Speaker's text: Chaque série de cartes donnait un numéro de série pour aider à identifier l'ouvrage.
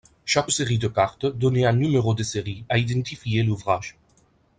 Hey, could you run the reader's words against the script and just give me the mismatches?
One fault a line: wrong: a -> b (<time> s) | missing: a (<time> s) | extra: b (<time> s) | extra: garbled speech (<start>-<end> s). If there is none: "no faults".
missing: pour aider (2.6 s)